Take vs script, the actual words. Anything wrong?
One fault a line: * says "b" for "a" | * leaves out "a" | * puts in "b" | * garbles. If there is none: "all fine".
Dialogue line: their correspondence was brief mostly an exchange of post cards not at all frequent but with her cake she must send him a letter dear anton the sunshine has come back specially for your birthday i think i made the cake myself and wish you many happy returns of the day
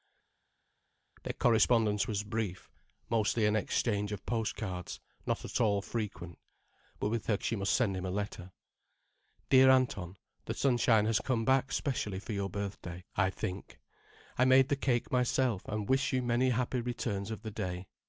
* leaves out "cake"